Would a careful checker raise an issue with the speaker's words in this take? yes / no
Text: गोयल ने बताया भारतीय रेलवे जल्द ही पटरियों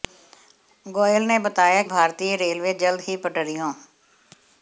no